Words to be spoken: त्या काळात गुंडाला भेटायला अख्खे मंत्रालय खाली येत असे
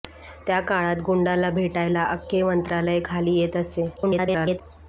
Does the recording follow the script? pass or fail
fail